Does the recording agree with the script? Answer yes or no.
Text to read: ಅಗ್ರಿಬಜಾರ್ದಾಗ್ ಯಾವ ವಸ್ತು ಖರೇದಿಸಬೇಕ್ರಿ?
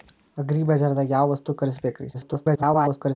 no